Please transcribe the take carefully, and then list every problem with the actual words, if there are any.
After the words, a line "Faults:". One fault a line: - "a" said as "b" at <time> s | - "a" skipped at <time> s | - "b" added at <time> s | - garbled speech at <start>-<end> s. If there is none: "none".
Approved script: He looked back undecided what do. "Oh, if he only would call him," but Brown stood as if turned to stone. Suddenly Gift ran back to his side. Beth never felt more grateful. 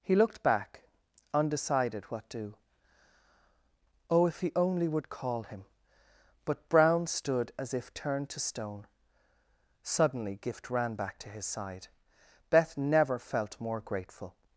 He looked back undecided what do. "Oh, if he only would call him," but Brown stood as if turned to stone. Suddenly Gift ran back to his side. Beth never felt more grateful.
Faults:
none